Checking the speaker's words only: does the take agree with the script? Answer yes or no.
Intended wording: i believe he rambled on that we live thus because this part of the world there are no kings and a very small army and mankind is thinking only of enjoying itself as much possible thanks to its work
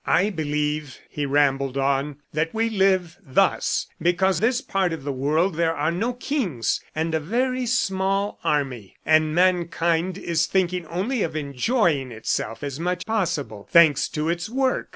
yes